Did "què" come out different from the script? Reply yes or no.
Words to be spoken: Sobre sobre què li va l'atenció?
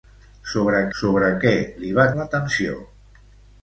no